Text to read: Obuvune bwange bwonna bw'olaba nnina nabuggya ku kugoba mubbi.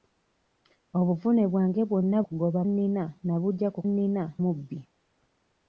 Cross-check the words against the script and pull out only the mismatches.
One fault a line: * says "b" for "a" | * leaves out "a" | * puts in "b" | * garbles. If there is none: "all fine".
* says "kugoba" for "bw'olaba"
* says "nnina" for "kugoba"